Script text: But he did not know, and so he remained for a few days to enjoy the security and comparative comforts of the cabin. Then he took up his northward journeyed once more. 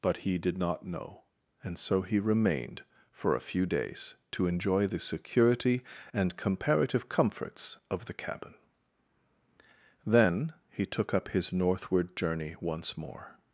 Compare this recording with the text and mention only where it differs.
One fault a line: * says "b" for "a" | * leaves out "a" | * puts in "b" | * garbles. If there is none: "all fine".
* says "journey" for "journeyed"